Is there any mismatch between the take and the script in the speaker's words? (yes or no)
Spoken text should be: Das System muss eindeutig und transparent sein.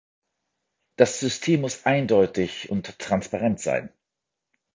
no